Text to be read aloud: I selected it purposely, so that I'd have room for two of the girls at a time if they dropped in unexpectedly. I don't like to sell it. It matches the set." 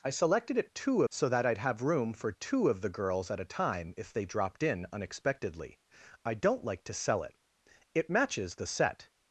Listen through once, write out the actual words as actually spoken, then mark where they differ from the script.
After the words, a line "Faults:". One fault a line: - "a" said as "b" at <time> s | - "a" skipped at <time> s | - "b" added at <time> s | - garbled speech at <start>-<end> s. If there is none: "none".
I selected it two, so that I'd have room for two of the girls at a time if they dropped in unexpectedly. I don't like to sell it. It matches the set."
Faults:
- "purposely" said as "two" at 0.7 s